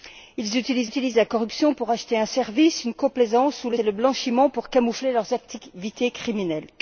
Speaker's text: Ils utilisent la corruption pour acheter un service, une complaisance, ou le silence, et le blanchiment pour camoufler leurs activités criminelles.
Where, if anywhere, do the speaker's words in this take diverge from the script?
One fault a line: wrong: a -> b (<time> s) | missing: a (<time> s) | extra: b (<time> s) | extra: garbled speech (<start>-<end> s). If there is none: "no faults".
extra: utilisent (0.8 s)
missing: silence (3.8 s)